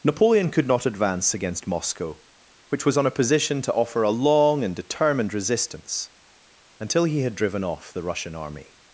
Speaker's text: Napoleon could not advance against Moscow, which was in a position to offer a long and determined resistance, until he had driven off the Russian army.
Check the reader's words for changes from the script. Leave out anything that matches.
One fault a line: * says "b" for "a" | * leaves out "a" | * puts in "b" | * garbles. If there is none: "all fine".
* says "on" for "in"